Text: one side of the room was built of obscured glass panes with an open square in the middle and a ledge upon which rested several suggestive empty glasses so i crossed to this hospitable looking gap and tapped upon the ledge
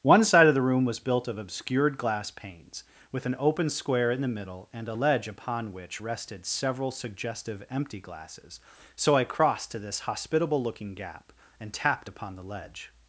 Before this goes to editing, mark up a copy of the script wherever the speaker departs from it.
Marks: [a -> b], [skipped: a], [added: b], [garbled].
one side of the room was built of obscured glass panes with an open square in the middle and a ledge upon which rested several suggestive empty glasses so i crossed to this hospitable looking gap and tapped upon the ledge